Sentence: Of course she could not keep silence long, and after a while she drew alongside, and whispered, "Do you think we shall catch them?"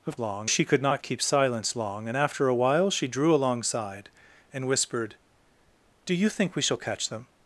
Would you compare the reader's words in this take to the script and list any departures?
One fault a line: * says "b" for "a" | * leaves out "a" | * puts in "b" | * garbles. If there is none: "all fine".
* says "long" for "course"